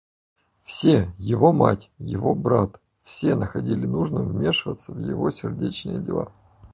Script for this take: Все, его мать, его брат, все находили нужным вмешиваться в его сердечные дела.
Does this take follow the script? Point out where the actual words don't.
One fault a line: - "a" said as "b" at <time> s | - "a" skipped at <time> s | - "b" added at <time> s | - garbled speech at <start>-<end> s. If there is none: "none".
none